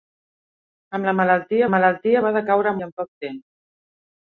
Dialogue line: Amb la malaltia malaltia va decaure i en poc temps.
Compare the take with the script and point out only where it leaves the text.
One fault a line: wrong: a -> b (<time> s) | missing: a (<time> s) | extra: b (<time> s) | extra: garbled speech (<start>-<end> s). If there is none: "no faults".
no faults